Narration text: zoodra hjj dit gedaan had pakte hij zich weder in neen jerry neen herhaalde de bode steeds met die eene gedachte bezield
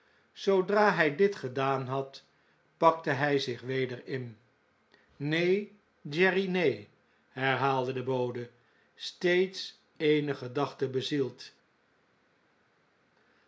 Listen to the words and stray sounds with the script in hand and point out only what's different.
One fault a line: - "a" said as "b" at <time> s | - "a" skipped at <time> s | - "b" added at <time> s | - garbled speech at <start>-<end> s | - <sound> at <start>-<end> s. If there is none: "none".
- "met die" skipped at 9.8 s